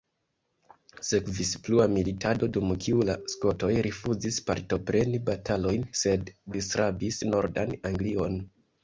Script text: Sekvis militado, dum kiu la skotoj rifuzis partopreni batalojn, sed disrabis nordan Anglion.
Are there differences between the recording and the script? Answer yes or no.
yes